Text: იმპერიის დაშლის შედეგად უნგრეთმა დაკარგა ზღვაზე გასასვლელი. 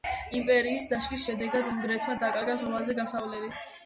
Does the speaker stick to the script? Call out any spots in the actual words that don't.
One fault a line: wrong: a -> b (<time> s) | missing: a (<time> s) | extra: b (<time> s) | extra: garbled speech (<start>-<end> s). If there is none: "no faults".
no faults